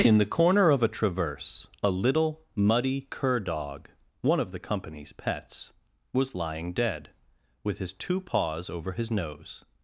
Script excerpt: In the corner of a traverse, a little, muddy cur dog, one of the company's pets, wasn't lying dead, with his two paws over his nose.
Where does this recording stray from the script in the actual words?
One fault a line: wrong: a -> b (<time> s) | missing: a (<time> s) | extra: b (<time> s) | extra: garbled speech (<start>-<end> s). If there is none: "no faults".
wrong: wasn't -> was (6.1 s)